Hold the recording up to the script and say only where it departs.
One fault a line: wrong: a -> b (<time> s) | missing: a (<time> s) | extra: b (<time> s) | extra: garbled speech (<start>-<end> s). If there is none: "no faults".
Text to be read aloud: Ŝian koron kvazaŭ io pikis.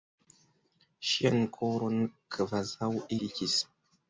missing: io (2.9 s)